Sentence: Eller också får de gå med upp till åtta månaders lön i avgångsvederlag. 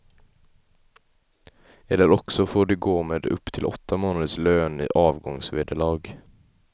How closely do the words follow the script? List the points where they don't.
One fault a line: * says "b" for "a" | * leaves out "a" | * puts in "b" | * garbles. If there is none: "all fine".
all fine